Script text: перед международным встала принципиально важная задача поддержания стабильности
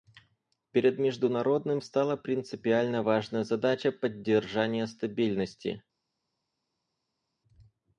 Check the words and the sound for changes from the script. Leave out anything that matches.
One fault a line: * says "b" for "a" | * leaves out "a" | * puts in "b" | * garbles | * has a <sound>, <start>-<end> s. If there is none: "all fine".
all fine